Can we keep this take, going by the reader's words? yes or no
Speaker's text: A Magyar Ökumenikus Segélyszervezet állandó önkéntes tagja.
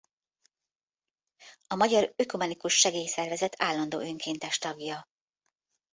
yes